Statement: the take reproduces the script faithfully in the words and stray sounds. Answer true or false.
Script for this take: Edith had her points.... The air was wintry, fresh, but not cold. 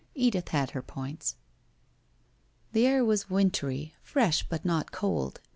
true